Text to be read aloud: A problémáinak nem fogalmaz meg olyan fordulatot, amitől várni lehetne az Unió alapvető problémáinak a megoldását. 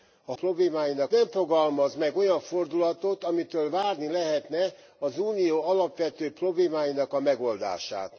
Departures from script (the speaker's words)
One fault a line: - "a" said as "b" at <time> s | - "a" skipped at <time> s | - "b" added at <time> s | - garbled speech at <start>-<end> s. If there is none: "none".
none